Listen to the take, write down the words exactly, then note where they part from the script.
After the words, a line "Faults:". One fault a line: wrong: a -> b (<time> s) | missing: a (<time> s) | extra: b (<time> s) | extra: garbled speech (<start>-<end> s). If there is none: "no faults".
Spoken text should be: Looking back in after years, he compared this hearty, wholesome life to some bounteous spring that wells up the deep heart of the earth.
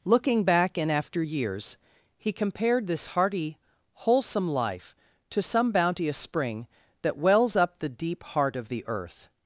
Looking back in after years, he compared this hearty, wholesome life to some bounteous spring that wells up the deep heart of the earth.
Faults:
no faults